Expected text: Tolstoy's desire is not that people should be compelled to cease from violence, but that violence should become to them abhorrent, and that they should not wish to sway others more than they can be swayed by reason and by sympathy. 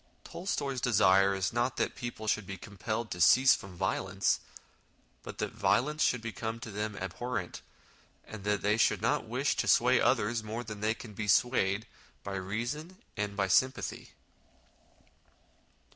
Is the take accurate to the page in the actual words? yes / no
yes